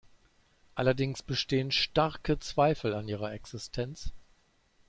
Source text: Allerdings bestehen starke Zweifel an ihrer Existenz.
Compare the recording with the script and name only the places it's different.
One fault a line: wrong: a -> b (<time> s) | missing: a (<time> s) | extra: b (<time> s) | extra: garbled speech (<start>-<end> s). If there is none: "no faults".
no faults